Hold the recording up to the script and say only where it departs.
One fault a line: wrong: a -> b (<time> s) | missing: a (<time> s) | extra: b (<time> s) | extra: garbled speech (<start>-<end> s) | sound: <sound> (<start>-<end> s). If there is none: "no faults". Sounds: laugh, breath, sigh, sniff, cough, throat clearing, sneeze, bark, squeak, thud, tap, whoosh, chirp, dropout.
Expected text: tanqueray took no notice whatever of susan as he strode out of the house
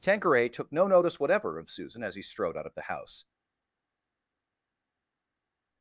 no faults